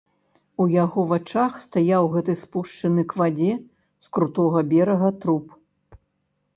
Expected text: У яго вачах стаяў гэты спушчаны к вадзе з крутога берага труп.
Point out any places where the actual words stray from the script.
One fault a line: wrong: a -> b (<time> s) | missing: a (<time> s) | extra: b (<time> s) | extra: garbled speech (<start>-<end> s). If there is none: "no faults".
no faults